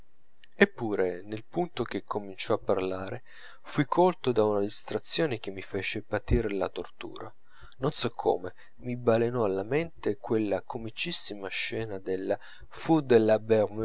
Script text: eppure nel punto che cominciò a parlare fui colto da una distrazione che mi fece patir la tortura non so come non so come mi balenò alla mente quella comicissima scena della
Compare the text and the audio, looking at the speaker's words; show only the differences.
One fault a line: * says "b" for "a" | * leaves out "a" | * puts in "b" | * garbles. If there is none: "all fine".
* leaves out "non so come"